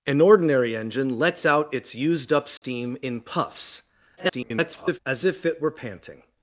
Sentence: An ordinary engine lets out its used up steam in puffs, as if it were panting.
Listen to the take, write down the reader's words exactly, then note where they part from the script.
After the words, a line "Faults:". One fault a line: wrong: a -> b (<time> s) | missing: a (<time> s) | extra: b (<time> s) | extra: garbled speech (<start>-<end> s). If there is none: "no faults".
An ordinary engine lets out its used up steam in puffs, [garbled] as if it were panting.
Faults:
extra: garbled speech (4.2-5.0 s)